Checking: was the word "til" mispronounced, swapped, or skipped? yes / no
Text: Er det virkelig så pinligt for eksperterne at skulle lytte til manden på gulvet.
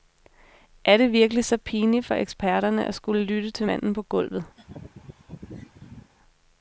no